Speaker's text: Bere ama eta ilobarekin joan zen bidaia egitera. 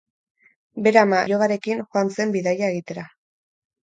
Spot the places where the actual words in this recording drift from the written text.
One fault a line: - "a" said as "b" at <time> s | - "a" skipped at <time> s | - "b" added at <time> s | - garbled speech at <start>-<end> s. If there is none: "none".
- "eta" skipped at 1.2 s